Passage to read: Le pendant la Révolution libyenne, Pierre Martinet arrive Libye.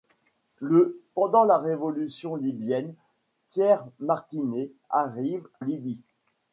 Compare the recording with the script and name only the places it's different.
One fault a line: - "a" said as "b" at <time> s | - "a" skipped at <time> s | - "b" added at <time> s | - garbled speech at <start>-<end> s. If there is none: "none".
none